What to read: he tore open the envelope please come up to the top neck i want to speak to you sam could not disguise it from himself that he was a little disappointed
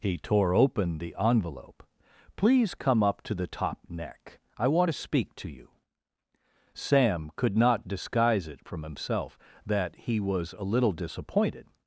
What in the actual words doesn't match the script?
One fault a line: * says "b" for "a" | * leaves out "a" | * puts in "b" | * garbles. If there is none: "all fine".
all fine